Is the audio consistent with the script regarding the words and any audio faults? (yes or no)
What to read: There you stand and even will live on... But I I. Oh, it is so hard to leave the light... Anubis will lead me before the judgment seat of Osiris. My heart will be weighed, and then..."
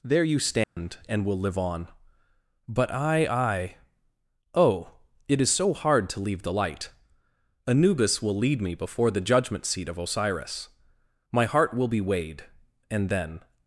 no